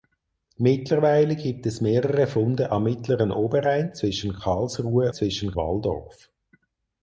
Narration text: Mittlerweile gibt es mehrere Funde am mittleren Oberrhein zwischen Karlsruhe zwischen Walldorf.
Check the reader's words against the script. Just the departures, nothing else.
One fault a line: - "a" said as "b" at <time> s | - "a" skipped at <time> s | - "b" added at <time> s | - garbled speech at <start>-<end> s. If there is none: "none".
none